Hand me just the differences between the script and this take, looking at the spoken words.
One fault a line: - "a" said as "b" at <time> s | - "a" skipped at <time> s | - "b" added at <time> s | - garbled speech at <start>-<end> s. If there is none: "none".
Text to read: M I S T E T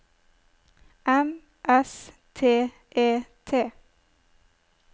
- "I" skipped at 1.4 s